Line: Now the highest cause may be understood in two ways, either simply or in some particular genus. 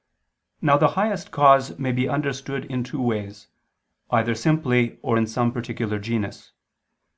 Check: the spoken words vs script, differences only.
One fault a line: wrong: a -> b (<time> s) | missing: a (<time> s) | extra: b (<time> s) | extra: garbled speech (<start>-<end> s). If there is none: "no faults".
no faults